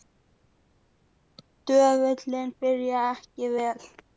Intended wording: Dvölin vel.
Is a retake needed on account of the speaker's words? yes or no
yes